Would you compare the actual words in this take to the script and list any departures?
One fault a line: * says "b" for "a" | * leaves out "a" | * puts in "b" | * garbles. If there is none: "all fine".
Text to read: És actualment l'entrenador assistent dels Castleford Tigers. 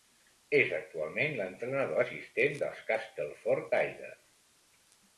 all fine